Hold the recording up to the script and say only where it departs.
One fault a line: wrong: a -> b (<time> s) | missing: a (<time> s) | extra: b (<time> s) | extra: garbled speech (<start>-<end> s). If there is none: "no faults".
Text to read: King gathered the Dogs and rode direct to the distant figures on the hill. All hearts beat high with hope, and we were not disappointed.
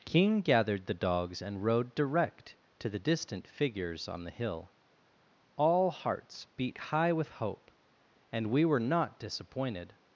no faults